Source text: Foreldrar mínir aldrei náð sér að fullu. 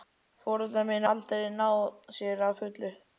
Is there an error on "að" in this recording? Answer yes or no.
no